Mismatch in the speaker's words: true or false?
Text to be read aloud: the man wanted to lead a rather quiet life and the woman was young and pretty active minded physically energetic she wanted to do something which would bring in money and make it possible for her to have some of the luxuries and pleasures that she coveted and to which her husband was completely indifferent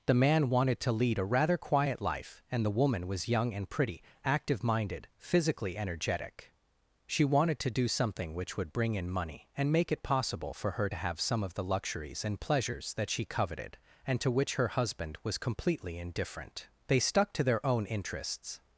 true